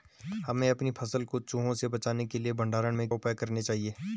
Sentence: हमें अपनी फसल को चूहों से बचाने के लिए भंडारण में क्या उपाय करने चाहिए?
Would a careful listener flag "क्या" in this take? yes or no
yes